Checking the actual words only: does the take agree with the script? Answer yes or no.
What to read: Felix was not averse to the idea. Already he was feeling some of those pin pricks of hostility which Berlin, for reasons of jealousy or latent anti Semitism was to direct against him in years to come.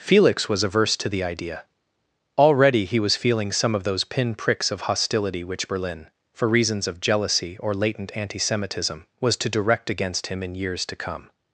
no